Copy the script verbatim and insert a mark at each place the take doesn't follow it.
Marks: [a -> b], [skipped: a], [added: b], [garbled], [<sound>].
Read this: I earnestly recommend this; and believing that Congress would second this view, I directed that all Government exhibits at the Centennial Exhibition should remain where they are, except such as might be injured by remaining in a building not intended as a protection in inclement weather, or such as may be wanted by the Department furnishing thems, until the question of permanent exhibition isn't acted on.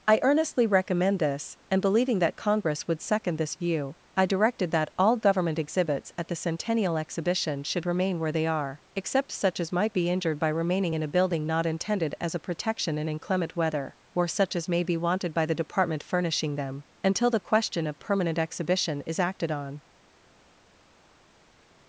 I earnestly recommend this; and believing that Congress would second this view, I directed that all Government exhibits at the Centennial Exhibition should remain where they are, except such as might be injured by remaining in a building not intended as a protection in inclement weather, or such as may be wanted by the Department furnishing [thems, -> them] until the question of permanent exhibition [isn't -> is] acted on.